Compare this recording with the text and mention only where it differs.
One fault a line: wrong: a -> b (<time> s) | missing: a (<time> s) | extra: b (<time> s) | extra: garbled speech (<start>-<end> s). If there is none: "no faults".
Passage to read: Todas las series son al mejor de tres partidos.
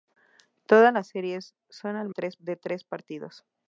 wrong: mejor -> tres (2.1 s)